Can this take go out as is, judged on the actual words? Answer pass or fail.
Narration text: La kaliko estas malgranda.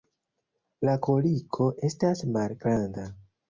pass